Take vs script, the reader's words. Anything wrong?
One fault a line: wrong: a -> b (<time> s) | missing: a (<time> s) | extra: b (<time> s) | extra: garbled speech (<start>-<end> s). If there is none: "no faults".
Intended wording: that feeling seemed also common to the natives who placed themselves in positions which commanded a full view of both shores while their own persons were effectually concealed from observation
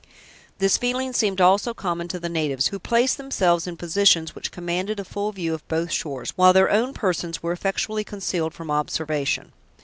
wrong: that -> this (0.6 s)